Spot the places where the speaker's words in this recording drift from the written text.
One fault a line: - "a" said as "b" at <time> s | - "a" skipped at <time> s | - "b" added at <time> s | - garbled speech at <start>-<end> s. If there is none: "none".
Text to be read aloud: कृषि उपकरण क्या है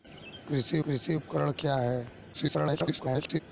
- "कृषि" added at 0.9 s
- garbled speech at 2.3-3.4 s